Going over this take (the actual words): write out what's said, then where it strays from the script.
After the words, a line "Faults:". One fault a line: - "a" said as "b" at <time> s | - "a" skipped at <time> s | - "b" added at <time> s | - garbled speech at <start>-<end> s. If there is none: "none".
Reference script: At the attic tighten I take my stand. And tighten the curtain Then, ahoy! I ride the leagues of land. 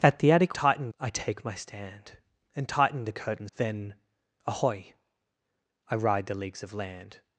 At the attic tighten I take my stand. And tighten the curtain Then, ahoy! I ride the leagues of land.
Faults:
none